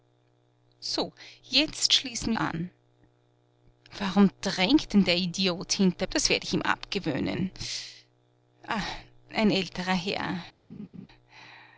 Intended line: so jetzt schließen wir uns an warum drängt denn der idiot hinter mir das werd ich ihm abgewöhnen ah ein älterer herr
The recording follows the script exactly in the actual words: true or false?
false